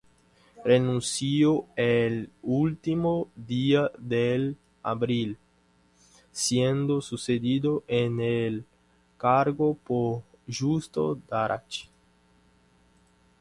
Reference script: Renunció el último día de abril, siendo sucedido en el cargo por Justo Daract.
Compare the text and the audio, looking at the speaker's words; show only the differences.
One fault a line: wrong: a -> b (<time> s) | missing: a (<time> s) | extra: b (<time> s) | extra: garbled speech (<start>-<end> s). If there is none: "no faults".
no faults